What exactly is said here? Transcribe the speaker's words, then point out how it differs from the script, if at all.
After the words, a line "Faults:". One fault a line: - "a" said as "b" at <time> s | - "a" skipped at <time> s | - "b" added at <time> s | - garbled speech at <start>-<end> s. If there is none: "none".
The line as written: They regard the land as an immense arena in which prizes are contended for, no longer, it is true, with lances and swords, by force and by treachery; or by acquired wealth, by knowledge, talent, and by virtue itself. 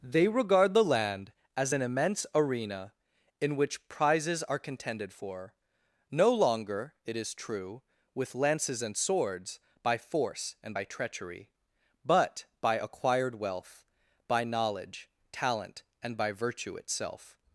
They regard the land as an immense arena in which prizes are contended for, no longer, it is true, with lances and swords, by force and by treachery; but by acquired wealth, by knowledge, talent, and by virtue itself.
Faults:
- "or" said as "but" at 12.0 s